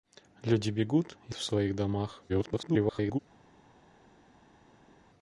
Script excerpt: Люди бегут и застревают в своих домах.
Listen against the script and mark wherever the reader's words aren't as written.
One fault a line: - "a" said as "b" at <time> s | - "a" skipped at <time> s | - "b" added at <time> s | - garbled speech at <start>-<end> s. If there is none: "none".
- "застревают" skipped at 1.4 s
- garbled speech at 2.3-3.2 s